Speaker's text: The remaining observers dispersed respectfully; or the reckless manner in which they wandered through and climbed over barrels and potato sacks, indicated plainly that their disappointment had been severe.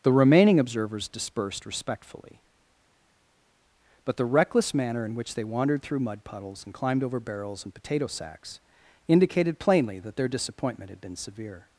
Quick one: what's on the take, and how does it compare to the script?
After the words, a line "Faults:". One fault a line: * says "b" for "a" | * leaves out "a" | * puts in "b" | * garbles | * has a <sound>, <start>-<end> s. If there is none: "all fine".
The remaining observers dispersed respectfully; but the reckless manner in which they wandered through mud puddles and climbed over barrels and potato sacks, indicated plainly that their disappointment had been severe.
Faults:
* says "but" for "or"
* puts in "mud puddles"